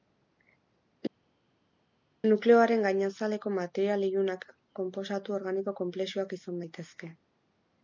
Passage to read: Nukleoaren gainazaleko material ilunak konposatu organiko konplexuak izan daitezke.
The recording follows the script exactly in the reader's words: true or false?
true